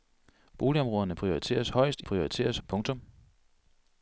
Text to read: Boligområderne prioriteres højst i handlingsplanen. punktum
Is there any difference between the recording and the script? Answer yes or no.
yes